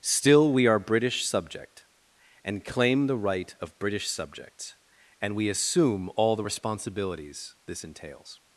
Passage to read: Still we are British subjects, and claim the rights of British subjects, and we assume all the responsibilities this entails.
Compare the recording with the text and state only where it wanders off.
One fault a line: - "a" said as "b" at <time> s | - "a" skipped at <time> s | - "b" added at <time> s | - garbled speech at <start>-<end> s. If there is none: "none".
- "subjects" said as "subject" at 1.2 s
- "rights" said as "right" at 3.1 s